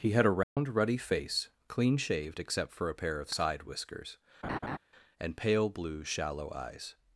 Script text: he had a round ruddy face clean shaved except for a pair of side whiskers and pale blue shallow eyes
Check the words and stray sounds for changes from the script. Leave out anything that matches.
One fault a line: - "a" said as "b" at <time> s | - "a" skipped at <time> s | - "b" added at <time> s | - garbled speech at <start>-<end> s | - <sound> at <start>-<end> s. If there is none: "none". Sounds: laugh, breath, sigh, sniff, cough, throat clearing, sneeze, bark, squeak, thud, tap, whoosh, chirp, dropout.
- dropout at 0.4-0.6 s
- laugh at 4.4-4.8 s